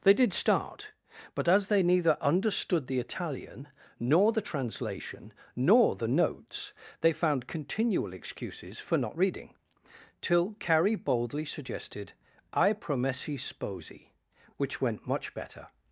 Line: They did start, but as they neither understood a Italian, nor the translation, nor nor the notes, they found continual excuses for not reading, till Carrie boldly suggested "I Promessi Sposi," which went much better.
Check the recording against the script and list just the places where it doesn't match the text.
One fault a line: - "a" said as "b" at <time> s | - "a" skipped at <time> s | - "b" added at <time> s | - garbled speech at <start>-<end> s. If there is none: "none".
- "a" said as "the" at 2.9 s
- "nor" skipped at 6.0 s